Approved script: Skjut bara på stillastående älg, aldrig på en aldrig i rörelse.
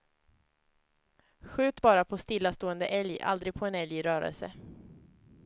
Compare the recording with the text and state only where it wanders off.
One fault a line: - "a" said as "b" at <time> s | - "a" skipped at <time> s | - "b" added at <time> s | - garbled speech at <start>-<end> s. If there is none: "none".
- "aldrig" said as "älg" at 3.7 s